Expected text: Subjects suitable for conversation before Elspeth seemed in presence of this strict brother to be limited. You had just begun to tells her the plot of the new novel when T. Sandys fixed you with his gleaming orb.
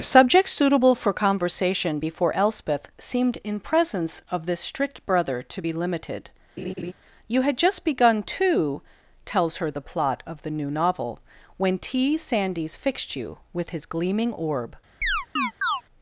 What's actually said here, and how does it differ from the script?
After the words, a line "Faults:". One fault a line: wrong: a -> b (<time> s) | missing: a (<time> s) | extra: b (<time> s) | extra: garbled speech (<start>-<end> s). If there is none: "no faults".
Subjects suitable for conversation before Elspeth seemed in presence of this strict brother to be limited. You had just begun to tells her the plot of the new novel when T. Sandys fixed you with his gleaming orb.
Faults:
no faults